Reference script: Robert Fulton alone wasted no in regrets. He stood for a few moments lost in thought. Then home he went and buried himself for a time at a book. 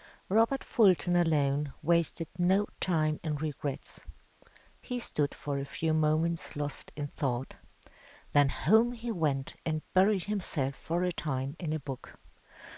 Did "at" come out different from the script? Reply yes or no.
yes